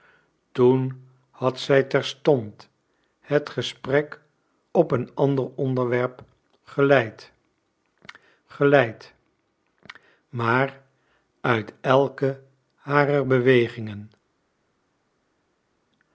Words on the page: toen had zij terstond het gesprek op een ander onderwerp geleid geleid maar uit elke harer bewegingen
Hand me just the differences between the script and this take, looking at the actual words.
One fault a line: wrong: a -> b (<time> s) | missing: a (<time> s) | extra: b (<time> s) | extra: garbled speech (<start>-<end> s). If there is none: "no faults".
no faults